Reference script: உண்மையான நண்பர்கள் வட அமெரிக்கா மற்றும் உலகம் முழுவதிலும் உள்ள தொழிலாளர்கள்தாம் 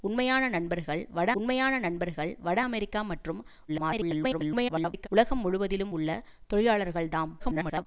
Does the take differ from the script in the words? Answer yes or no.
yes